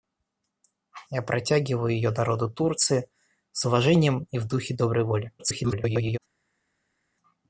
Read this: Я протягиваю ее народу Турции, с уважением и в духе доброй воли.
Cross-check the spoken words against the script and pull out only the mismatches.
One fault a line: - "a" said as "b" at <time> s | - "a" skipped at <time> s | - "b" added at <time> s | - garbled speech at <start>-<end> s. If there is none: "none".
- garbled speech at 5.4-6.2 s